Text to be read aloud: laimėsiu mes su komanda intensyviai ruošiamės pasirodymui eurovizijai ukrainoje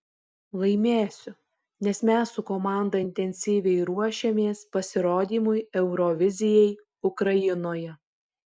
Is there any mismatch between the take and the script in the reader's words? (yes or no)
yes